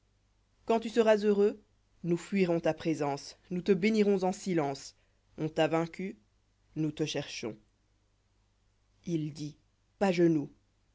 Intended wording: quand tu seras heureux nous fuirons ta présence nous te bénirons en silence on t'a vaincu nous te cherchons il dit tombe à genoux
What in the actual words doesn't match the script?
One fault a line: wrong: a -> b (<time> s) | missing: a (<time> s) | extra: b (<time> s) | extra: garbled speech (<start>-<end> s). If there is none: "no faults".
missing: tombe (9.6 s)